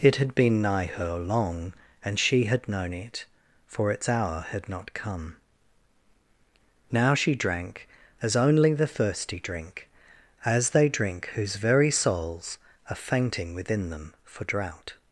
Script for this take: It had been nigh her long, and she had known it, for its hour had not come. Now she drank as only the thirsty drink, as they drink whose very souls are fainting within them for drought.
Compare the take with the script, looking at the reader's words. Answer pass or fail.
pass